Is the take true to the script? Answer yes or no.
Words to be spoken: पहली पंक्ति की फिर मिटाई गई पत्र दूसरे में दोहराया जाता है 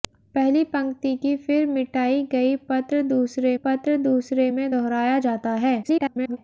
no